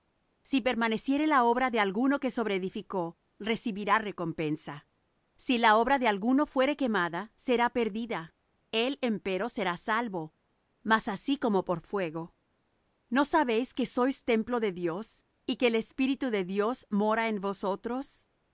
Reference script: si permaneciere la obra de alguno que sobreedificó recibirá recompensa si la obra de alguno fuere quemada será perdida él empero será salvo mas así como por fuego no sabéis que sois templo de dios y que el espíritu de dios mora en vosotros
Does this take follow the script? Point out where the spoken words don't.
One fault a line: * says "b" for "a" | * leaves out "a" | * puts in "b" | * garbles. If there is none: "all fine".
all fine